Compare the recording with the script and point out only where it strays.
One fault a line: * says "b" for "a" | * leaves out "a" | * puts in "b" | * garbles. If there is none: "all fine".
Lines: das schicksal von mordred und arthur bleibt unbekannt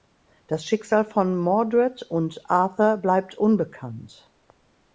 all fine